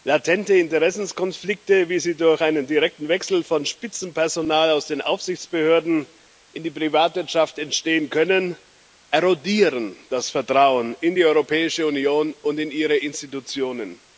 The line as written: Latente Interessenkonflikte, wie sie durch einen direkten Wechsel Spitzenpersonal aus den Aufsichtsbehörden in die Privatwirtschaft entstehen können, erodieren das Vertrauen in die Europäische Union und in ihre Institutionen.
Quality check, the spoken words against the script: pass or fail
fail